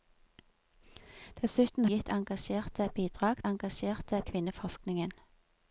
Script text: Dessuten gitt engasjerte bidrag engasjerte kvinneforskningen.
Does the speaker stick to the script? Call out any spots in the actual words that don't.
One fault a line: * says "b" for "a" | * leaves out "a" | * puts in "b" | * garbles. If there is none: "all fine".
all fine